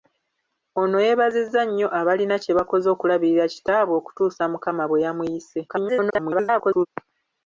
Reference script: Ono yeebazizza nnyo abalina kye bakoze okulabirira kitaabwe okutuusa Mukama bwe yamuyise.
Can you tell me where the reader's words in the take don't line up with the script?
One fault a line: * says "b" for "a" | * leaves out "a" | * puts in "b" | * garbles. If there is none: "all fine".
* garbles